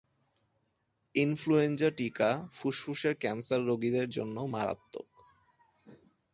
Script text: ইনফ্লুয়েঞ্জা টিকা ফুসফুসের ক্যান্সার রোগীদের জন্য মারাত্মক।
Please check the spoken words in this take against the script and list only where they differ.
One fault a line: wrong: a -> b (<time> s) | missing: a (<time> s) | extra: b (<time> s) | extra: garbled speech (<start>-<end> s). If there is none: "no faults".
no faults